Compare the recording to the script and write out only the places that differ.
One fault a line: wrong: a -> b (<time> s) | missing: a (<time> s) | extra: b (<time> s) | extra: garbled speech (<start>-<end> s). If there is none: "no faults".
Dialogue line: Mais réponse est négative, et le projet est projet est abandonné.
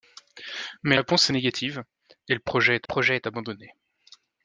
no faults